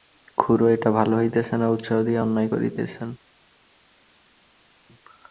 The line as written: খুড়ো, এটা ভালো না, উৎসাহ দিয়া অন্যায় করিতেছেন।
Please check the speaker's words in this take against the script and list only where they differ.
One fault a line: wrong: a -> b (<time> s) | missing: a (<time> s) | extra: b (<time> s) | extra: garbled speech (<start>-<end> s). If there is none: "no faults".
extra: হইতেছে (1.1 s)